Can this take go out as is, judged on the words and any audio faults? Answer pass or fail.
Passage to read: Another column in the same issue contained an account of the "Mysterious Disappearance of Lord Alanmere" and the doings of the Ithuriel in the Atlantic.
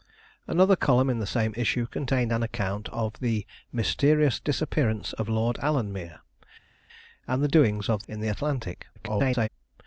fail